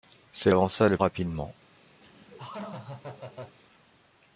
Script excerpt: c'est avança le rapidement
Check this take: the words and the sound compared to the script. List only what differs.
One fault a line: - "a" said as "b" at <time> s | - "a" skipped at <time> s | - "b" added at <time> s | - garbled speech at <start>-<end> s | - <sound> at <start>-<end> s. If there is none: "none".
- laugh at 2.0-3.6 s